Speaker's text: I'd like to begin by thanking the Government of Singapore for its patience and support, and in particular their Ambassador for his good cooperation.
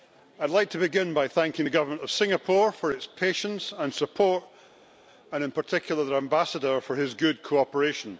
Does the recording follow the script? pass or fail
pass